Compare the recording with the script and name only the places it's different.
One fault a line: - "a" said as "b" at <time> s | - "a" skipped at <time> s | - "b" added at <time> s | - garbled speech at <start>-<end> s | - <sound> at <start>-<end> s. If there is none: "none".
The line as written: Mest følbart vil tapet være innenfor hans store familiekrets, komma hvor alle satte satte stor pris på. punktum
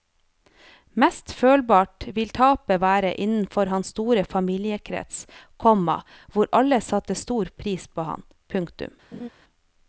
- "satte" skipped at 7.2 s
- "ham" added at 8.1 s
- laugh at 9.1-9.3 s